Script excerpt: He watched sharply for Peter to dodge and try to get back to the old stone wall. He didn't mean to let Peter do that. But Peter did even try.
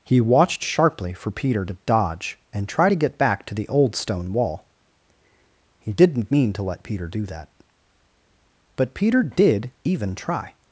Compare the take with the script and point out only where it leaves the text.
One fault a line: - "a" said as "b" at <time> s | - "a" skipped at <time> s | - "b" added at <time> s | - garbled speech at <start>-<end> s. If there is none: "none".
none